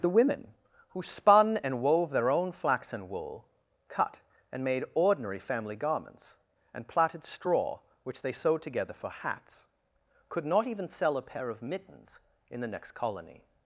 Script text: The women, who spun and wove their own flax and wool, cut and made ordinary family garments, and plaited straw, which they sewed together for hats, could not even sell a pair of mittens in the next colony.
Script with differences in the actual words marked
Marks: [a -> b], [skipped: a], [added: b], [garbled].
The women, who spun and wove their own flax and wool, cut and made ordinary family garments, and plaited straw, which they sewed together for hats, could not even sell a pair of mittens in the next colony.